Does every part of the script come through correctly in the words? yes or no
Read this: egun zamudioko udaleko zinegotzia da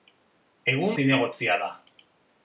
no